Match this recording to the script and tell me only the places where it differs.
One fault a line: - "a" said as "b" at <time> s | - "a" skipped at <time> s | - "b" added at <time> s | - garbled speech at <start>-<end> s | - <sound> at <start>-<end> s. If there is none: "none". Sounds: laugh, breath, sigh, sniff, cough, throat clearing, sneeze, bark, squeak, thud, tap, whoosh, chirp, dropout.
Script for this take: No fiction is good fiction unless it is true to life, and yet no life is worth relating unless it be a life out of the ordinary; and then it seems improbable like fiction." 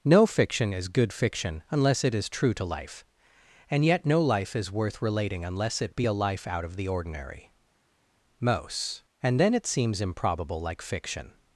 - "most" added at 8.4 s